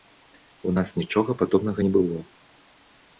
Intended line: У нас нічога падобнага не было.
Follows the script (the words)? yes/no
yes